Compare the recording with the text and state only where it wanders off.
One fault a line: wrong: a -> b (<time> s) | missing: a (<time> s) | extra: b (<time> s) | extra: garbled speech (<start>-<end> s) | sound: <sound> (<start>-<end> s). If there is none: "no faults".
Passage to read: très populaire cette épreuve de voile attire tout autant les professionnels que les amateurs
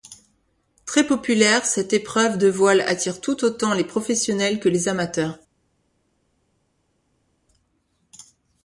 no faults